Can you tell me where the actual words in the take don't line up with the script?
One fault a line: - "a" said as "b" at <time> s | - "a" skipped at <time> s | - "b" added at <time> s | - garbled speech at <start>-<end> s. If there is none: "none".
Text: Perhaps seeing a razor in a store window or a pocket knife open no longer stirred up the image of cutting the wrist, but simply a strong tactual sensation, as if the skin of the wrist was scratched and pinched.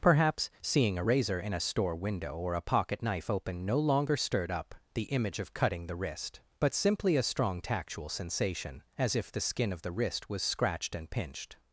none